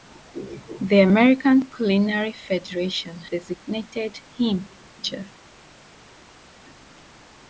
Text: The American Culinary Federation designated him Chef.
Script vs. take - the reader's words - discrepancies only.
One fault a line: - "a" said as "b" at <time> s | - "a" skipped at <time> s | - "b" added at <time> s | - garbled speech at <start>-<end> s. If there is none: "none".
none